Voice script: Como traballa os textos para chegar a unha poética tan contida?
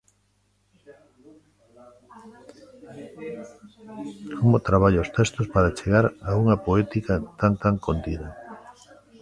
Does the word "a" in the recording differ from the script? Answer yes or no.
no